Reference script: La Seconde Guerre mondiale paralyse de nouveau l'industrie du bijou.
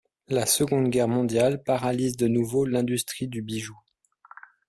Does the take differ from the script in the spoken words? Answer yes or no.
no